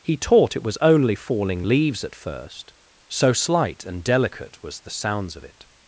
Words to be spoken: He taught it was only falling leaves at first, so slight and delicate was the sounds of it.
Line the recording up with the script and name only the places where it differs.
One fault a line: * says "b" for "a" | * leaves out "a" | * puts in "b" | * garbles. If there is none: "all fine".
all fine